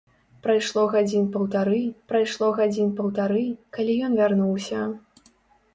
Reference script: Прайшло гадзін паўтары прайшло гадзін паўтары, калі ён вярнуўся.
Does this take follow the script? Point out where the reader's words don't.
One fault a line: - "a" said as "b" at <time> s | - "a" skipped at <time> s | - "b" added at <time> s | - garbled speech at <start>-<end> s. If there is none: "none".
none